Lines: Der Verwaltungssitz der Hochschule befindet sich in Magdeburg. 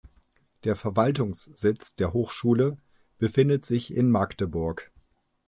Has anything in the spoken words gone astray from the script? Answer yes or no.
no